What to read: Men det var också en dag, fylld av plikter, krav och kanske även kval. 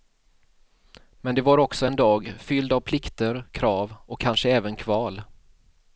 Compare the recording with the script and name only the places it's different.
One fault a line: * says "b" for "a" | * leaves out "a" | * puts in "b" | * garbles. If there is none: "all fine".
all fine